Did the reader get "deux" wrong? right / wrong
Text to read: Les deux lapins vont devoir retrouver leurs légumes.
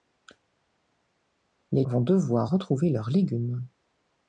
wrong